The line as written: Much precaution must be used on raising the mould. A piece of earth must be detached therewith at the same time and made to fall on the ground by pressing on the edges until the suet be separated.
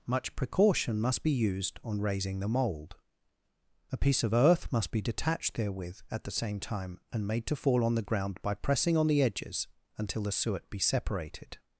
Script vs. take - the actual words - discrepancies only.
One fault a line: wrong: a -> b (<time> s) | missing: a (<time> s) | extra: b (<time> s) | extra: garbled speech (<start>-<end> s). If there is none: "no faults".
no faults